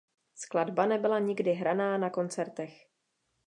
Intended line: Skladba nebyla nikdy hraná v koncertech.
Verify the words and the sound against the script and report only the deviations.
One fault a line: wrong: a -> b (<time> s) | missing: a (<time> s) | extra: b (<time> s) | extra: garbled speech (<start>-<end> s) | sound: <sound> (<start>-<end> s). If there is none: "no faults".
wrong: v -> na (2.0 s)